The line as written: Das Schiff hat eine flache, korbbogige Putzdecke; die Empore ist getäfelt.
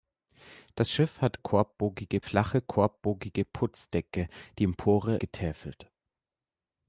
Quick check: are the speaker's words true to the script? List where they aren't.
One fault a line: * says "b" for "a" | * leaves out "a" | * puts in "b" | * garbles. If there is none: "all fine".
* says "korbbogige" for "eine"
* leaves out "ist"